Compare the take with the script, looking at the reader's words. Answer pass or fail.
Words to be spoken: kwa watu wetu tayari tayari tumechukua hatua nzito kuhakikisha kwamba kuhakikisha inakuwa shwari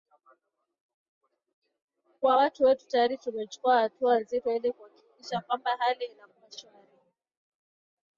fail